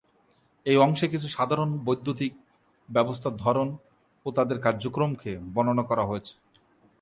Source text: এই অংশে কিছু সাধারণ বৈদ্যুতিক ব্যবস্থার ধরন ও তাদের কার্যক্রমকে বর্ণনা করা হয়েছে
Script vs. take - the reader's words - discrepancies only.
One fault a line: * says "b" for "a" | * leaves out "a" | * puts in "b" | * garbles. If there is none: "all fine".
all fine